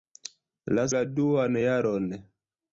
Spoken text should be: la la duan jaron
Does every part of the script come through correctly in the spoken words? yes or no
yes